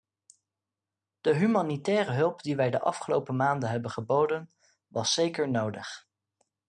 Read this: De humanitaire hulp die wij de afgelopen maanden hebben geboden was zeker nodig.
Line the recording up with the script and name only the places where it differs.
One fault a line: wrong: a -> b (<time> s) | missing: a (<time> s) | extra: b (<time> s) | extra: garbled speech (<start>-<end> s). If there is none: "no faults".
no faults